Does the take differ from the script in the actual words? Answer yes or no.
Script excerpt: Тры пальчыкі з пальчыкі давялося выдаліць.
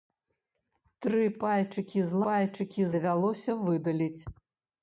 no